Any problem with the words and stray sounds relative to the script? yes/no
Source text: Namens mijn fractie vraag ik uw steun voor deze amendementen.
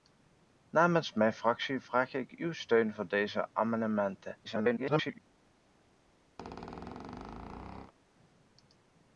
yes